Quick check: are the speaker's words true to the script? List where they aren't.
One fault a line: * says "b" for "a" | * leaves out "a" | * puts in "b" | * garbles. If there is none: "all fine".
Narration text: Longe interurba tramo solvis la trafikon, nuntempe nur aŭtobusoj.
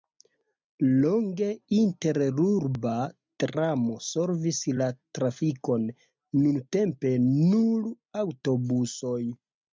all fine